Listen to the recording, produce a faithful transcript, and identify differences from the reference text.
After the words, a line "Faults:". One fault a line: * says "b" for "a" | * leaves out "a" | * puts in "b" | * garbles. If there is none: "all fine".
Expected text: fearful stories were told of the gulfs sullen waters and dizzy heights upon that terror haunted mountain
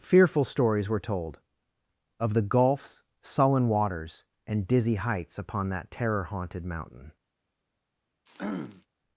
fearful stories were told of the gulfs sullen waters and dizzy heights upon that terror haunted mountain
Faults:
all fine